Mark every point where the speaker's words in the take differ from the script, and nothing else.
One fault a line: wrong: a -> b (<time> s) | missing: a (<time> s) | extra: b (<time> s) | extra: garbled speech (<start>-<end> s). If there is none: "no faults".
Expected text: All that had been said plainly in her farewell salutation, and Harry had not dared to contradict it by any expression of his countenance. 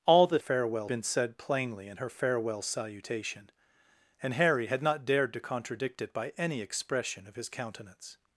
wrong: had -> farewell (0.4 s)